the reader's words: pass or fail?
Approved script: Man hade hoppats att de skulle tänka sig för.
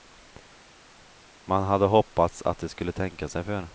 pass